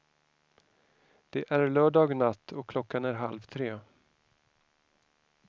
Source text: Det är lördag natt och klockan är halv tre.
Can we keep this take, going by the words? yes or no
yes